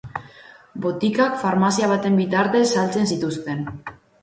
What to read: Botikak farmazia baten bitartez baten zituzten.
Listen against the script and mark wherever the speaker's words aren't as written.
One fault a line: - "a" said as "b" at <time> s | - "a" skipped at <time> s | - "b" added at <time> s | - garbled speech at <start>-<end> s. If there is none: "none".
- "baten" said as "saltzen" at 2.7 s